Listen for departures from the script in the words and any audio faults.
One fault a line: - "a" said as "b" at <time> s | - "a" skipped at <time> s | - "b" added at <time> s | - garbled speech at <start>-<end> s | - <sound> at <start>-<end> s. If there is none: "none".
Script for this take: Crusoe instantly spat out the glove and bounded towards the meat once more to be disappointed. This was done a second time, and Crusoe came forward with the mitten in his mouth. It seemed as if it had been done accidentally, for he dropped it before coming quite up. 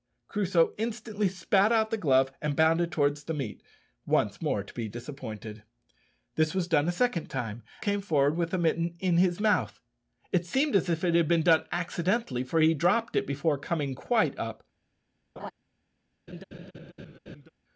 - "and Crusoe" skipped at 7.6 s
- laugh at 15.4-15.5 s
- laugh at 16.3-17.5 s